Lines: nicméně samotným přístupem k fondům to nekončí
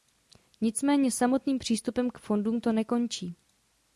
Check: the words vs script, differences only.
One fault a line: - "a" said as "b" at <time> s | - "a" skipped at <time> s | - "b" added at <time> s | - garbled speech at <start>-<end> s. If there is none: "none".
none